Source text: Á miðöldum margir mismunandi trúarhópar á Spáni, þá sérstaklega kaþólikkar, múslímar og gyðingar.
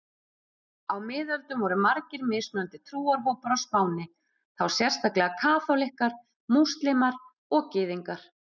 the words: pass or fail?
fail